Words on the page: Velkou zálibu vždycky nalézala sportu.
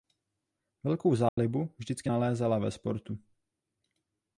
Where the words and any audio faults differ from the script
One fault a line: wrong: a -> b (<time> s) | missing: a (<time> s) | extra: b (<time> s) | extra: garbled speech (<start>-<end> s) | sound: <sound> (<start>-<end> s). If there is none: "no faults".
sound: dropout (1.3-1.4 s)
extra: ve (2.6 s)